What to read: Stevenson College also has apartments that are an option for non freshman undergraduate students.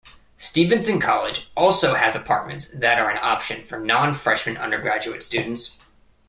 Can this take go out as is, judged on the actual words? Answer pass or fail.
pass